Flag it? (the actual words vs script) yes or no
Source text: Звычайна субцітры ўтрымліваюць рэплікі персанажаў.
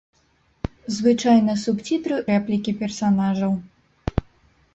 yes